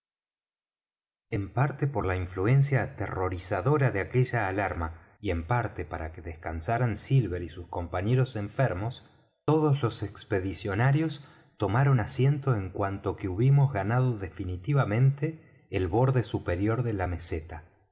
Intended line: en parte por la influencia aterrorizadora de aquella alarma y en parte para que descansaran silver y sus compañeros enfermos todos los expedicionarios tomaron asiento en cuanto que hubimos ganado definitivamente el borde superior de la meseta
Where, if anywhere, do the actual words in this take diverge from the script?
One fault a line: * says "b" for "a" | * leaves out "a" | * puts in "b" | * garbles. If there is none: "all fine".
all fine